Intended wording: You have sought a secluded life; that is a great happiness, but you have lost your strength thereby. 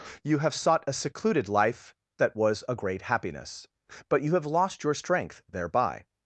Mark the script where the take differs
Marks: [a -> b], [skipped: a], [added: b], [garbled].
You have sought a secluded life; that [is -> was] a great happiness, but you have lost your strength thereby.